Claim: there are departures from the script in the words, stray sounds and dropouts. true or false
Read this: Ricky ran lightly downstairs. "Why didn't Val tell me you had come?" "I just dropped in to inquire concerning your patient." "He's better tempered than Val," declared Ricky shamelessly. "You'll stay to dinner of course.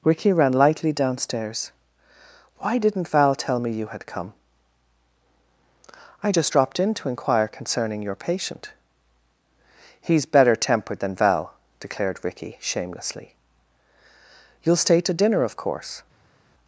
false